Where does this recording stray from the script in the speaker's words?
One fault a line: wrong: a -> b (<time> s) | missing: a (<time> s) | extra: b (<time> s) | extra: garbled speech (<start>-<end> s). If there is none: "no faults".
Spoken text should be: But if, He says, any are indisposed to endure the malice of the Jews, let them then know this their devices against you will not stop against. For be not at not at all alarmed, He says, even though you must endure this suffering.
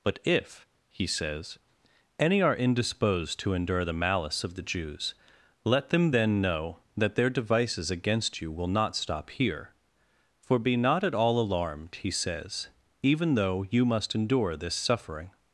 wrong: this -> that (7.0 s)
wrong: against -> here (9.3 s)
missing: not at (11.2 s)